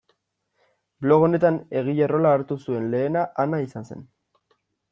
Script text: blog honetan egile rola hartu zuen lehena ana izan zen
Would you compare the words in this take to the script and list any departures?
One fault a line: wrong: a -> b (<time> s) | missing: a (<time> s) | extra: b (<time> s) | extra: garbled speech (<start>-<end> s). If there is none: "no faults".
no faults